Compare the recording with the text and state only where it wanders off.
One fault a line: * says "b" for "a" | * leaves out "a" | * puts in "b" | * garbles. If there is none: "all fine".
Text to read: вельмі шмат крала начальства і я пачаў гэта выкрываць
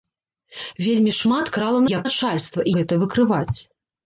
* leaves out "начальства"
* says "начальства" for "пачаў"